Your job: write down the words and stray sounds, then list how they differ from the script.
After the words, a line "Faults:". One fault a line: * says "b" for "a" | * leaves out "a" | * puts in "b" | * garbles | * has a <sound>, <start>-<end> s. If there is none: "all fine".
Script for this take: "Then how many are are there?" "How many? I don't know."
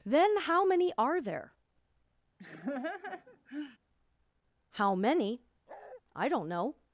"Then how many are there?" "How many? I don't know."
Faults:
* leaves out "are"
* has a laugh, 2.4-3.8 s
* has a bark, 5.7-6.0 s